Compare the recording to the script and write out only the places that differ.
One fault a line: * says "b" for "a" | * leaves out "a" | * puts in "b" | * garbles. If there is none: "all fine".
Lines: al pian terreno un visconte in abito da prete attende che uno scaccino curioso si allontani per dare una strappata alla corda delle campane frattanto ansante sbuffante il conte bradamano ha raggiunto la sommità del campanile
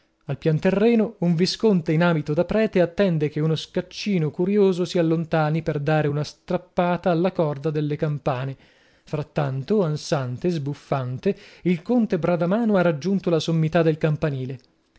all fine